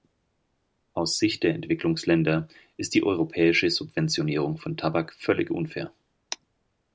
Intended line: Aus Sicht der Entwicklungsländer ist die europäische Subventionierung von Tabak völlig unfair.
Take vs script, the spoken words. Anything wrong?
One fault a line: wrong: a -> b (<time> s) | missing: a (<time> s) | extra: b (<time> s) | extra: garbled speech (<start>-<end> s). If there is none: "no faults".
no faults